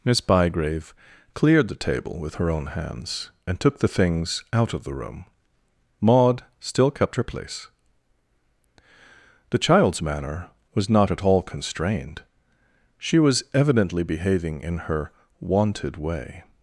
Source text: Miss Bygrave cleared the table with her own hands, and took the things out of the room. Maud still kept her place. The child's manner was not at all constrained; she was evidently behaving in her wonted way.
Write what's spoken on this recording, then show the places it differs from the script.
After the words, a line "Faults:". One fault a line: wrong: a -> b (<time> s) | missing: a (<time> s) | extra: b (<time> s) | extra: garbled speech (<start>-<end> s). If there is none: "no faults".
Miss Bygrave cleared the table with her own hands, and took the things out of the room. Maud still kept her place. The child's manner was not at all constrained; she was evidently behaving in her wonted way.
Faults:
no faults